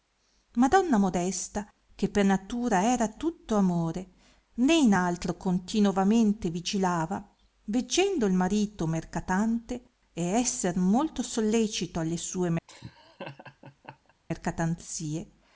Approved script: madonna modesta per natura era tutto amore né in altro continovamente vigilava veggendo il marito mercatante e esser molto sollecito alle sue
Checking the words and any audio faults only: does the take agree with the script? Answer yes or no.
no